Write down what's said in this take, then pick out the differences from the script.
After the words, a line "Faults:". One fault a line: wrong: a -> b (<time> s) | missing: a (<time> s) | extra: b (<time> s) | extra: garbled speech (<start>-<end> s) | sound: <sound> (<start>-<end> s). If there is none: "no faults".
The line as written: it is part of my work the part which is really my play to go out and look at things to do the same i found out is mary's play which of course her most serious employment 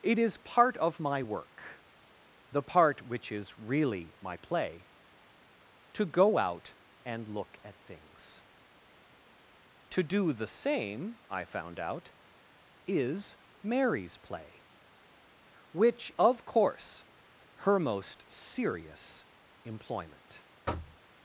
it is part of my work the part which is really my play to go out and look at things to do the same i found out is mary's play which of course her most serious employment
Faults:
sound: thud (20.7-21.0 s)